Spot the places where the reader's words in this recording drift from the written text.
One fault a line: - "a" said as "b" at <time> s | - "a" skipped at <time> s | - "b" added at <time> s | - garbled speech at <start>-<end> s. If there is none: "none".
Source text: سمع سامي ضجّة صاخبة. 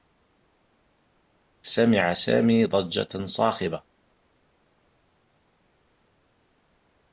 none